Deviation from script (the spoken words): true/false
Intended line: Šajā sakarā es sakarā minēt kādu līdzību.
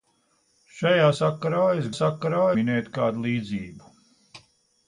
false